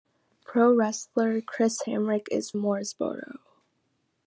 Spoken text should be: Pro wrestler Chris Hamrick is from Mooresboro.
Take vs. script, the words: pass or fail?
fail